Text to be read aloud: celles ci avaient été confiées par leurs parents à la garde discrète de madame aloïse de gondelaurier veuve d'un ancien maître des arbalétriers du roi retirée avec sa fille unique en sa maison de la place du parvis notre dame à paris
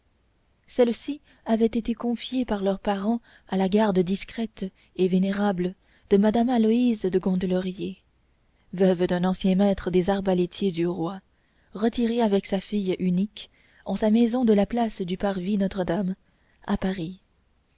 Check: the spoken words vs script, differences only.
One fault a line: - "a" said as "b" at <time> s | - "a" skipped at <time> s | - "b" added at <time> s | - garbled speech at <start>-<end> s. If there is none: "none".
- "et vénérable" added at 5.0 s